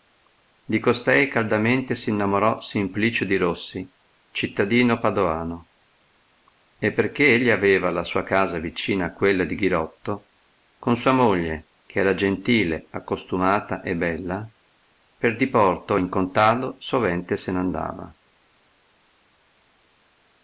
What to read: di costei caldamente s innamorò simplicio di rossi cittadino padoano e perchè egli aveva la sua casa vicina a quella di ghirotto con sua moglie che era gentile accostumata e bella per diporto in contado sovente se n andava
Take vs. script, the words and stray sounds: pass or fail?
pass